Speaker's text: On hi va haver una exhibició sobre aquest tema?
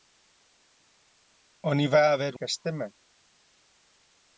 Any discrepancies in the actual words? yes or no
yes